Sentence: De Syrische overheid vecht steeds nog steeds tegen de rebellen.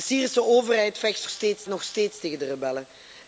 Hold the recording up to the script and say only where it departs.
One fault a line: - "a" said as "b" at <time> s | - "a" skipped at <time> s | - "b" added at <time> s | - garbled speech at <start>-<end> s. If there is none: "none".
none